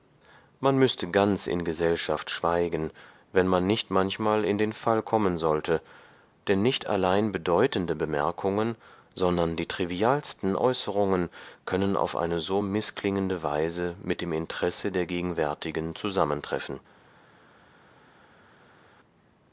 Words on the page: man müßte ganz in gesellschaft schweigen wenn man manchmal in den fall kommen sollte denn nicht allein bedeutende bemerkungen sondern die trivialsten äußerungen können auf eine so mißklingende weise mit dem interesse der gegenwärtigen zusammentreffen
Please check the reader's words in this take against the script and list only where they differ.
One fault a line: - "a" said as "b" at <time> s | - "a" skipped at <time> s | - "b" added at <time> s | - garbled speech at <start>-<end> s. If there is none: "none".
- "nicht" added at 3.7 s